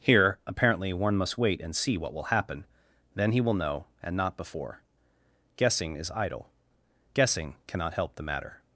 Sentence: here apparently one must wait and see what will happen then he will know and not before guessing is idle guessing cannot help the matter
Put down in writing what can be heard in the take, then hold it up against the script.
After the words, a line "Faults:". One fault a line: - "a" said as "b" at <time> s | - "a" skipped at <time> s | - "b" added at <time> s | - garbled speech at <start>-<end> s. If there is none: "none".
here apparently one must wait and see what will happen then he will know and not before guessing is idle guessing cannot help the matter
Faults:
none